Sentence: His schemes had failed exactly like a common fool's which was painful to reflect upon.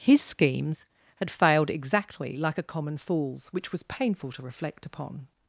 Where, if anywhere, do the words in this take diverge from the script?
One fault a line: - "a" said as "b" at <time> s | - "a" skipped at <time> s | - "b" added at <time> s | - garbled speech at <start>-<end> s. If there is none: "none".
none